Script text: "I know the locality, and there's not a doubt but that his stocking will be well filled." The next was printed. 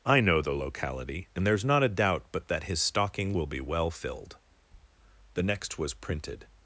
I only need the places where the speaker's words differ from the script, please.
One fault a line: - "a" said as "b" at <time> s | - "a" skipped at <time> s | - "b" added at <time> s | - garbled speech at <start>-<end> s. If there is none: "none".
none